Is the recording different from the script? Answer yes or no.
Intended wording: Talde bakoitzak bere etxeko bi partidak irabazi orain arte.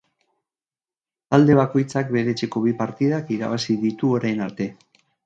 yes